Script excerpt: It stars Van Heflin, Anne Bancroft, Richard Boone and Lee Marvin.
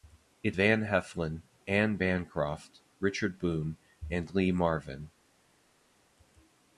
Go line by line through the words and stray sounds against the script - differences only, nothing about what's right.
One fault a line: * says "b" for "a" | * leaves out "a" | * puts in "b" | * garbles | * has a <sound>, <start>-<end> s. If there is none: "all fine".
* leaves out "stars"